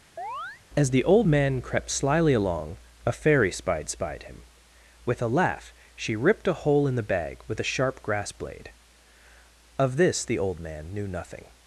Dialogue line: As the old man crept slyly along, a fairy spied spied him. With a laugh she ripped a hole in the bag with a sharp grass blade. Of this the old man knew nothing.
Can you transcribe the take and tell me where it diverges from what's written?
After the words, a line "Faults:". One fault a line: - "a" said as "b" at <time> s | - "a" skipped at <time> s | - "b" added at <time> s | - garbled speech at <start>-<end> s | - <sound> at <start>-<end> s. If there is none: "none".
As the old man crept slyly along, a fairy spied spied him. With a laugh she ripped a hole in the bag with a sharp grass blade. Of this the old man knew nothing.
Faults:
- chirp at 0.2-0.6 s